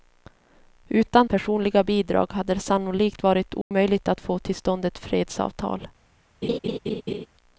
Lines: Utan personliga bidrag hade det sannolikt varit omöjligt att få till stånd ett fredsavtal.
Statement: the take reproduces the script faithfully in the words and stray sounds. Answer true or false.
false